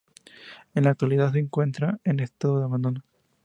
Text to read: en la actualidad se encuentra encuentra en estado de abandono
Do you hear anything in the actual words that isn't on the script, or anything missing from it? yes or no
yes